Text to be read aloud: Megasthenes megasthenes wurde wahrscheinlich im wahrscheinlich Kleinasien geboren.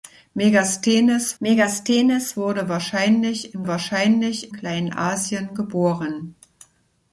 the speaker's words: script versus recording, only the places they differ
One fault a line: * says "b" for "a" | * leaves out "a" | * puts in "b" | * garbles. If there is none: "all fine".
all fine